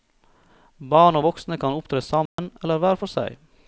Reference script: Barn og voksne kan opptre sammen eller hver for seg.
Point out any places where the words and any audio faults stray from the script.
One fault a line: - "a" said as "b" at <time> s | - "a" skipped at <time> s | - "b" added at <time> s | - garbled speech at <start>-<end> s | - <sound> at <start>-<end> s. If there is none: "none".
- dropout at 2.3-2.4 s